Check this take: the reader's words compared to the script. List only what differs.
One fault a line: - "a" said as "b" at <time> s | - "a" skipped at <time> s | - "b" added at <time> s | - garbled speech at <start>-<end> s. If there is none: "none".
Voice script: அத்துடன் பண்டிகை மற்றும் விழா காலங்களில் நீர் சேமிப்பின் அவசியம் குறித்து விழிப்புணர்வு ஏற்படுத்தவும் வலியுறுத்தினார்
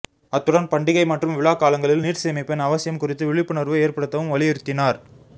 none